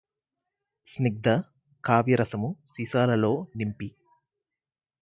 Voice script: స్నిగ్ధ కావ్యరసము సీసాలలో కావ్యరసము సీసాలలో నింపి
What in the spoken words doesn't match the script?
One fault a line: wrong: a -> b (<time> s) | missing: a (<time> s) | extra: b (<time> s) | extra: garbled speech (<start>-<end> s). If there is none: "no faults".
missing: కావ్యరసము సీసాలలో (3.3 s)